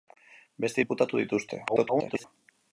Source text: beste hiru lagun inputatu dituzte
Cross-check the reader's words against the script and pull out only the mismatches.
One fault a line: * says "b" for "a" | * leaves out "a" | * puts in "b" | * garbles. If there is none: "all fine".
* leaves out "hiru lagun"
* garbles